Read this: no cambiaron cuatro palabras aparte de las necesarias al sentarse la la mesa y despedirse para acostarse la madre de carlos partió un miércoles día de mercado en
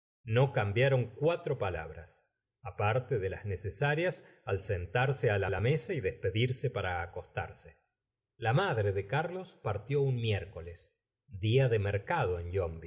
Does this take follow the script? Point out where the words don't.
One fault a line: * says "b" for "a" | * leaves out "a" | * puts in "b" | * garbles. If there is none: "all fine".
all fine